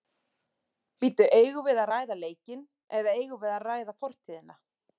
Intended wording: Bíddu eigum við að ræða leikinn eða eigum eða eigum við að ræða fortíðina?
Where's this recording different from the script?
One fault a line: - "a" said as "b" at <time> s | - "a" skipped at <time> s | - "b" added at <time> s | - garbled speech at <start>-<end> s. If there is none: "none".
- "eða eigum" skipped at 3.4 s